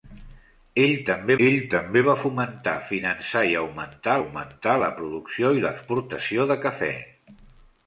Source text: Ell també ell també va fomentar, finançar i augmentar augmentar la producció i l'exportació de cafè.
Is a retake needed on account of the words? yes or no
no